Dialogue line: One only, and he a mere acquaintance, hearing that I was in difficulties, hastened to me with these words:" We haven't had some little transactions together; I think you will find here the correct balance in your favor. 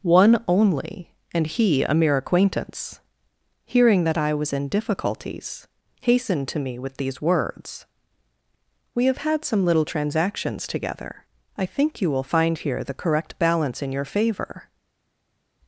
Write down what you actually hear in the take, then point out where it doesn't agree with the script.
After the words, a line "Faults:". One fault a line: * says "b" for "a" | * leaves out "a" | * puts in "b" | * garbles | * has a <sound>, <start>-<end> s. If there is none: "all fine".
One only, and he a mere acquaintance, hearing that I was in difficulties, hastened to me with these words:" We have had some little transactions together; I think you will find here the correct balance in your favor.
Faults:
* says "have" for "haven't"